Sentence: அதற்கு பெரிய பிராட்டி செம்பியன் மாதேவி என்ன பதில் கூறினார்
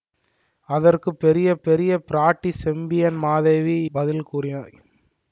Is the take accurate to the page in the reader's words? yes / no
no